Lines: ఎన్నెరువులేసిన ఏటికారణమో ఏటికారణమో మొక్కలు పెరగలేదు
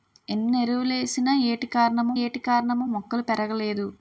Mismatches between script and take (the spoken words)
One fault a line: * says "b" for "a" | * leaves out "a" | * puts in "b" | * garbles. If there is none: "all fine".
all fine